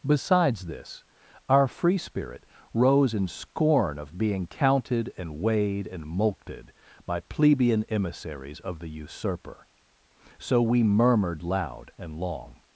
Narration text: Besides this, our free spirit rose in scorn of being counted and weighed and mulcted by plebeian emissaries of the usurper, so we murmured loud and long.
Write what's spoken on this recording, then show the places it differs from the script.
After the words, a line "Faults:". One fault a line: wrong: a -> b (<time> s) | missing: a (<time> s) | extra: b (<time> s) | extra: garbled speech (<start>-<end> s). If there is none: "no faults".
Besides this, our free spirit rose in scorn of being counted and weighed and mulcted by plebeian emissaries of the usurper, so we murmured loud and long.
Faults:
no faults